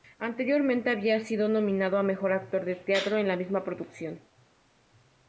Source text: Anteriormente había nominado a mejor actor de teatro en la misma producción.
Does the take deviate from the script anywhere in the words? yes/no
yes